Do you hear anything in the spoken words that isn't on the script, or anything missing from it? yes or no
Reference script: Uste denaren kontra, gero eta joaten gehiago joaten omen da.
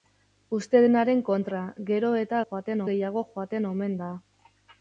no